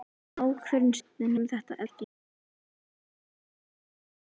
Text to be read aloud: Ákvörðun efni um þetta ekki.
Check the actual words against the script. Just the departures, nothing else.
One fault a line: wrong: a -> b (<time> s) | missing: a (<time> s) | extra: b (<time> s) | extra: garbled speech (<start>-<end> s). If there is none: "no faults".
no faults